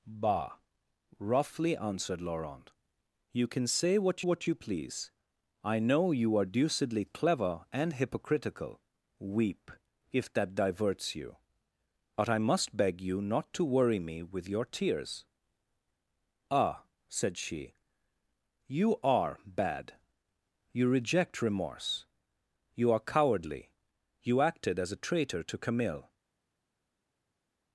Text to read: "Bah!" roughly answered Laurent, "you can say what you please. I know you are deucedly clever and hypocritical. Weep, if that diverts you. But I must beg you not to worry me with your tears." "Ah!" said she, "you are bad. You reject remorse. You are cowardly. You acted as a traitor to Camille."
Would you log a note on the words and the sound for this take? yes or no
yes